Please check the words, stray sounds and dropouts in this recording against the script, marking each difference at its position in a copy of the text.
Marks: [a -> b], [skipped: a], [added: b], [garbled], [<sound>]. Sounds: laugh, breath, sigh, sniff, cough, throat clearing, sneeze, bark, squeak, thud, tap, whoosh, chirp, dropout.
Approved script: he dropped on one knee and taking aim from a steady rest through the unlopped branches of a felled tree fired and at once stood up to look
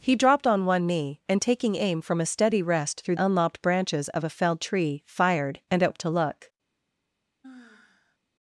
he dropped on one knee and taking aim from a steady rest through [skipped: the] unlopped branches of a felled tree fired and at [skipped: once stood] up to look [sigh]